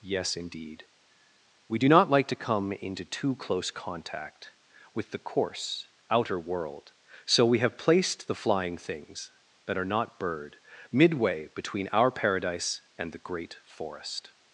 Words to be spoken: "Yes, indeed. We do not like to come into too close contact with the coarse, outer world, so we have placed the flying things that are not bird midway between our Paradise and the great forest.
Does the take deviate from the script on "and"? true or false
false